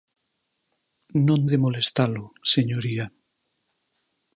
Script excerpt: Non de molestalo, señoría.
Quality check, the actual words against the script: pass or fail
pass